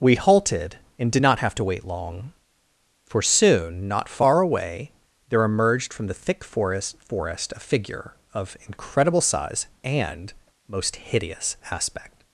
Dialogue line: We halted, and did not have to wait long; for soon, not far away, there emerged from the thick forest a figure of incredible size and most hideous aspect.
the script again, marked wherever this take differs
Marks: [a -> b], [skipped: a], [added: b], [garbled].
We halted, and did not have to wait long; for soon, not far away, there emerged from the thick forest [added: forest] a figure of incredible size and most hideous aspect.